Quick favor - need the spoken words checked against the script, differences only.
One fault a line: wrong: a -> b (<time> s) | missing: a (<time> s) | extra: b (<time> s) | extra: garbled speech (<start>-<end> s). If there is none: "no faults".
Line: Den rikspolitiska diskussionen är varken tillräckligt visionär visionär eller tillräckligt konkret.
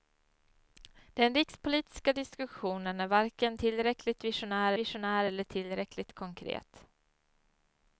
no faults